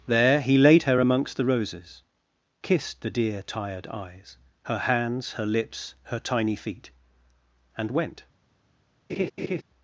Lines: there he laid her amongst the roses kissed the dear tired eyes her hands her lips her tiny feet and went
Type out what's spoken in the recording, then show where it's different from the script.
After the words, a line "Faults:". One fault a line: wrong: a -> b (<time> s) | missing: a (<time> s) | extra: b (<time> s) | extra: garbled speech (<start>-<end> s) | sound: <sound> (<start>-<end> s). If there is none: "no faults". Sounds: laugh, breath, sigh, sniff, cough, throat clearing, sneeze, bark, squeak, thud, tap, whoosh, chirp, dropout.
there he laid her amongst the roses kissed the dear tired eyes her hands her lips her tiny feet and went
Faults:
sound: laugh (9.1-9.6 s)